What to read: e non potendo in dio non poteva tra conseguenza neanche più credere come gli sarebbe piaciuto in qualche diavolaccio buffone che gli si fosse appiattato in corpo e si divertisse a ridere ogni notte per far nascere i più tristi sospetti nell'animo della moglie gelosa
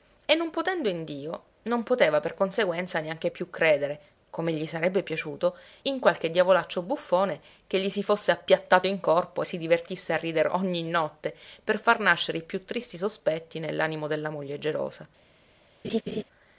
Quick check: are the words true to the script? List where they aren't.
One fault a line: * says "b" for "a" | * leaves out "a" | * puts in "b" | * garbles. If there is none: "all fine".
* says "per" for "tra"